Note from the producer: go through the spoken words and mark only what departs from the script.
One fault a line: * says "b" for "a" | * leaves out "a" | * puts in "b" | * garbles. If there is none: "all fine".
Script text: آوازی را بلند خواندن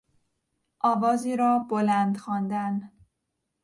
all fine